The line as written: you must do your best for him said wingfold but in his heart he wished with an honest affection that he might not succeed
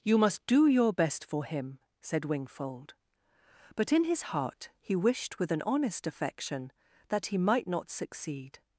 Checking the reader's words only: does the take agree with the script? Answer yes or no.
yes